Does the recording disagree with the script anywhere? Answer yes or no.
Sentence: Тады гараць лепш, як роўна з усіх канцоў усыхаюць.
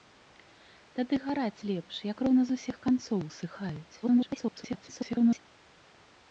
yes